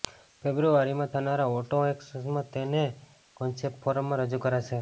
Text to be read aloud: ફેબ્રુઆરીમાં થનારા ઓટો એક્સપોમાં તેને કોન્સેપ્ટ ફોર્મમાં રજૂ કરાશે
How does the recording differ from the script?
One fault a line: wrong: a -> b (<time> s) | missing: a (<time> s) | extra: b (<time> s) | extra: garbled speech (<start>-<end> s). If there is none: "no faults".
no faults